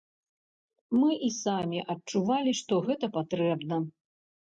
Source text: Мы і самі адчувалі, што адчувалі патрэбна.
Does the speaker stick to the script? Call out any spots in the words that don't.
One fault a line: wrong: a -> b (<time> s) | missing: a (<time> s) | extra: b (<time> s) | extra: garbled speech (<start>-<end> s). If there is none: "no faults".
wrong: адчувалі -> гэта (2.9 s)